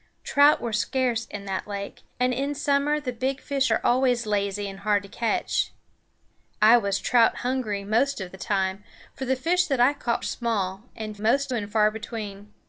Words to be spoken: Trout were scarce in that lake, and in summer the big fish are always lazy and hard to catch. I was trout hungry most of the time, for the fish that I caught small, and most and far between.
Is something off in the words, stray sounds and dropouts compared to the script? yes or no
no